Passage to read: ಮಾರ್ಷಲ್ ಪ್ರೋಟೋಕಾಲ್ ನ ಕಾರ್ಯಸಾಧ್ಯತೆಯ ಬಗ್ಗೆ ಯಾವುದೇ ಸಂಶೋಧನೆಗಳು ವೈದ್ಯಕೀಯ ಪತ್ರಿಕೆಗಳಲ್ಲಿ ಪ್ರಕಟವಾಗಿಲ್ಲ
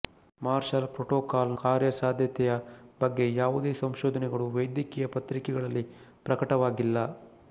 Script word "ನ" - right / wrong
wrong